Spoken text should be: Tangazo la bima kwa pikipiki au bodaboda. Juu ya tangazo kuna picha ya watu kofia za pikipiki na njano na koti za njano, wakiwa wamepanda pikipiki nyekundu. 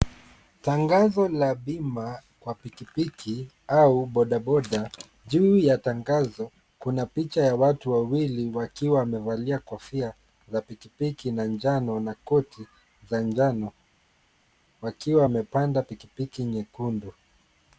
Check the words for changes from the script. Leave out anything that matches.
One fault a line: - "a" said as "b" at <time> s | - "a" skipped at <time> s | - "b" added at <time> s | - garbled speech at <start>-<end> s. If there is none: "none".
- "wawili wakiwa wamevalia" added at 7.9 s